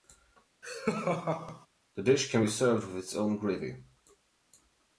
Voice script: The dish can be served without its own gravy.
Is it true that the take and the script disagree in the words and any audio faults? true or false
true